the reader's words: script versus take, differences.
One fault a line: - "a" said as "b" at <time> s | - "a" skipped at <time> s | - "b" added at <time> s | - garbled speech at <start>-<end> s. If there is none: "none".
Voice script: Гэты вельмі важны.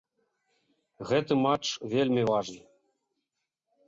- "матч" added at 1.4 s